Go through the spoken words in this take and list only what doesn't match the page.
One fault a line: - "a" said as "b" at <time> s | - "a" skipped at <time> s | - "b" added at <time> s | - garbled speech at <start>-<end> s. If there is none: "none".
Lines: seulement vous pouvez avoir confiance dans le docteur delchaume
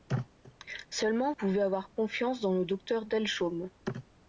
- "vous" skipped at 1.3 s